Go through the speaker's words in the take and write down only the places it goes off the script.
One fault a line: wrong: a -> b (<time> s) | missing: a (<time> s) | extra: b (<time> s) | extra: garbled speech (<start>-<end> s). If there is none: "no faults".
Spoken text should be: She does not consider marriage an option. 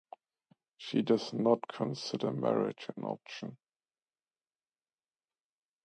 no faults